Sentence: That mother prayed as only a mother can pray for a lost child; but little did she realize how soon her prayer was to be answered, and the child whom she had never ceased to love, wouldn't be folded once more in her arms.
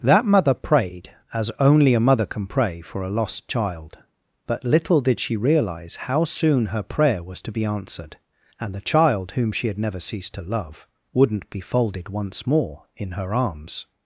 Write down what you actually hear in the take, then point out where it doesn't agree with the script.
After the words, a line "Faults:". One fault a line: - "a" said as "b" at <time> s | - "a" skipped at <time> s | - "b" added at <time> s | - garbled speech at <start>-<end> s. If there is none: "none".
That mother prayed as only a mother can pray for a lost child; but little did she realize how soon her prayer was to be answered, and the child whom she had never ceased to love, wouldn't be folded once more in her arms.
Faults:
none